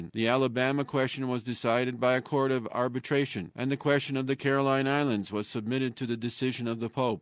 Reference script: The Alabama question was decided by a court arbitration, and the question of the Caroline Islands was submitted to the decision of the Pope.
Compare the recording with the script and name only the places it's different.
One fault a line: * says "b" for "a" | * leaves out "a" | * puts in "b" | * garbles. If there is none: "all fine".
* puts in "of"